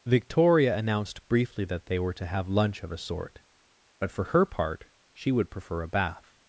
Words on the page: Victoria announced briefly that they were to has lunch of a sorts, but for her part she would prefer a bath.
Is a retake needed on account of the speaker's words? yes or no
yes